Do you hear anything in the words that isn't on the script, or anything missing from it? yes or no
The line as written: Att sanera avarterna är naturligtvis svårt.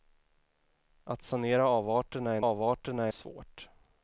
yes